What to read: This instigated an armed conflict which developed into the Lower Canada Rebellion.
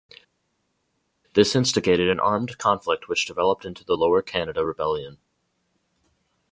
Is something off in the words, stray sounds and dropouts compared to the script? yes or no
no